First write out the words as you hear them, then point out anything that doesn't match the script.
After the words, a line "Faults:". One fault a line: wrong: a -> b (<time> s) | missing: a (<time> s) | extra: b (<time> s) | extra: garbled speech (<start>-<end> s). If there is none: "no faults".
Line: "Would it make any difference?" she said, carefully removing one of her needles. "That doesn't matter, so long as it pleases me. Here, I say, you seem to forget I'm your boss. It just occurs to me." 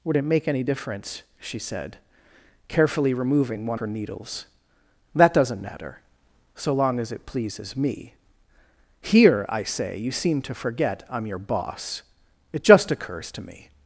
"Would it make any difference?" she said, carefully removing one her needles. "That doesn't matter, so long as it pleases me. Here, I say, you seem to forget I'm your boss. It just occurs to me."
Faults:
missing: of (3.8 s)